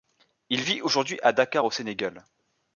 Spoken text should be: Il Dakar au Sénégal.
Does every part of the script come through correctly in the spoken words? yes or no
no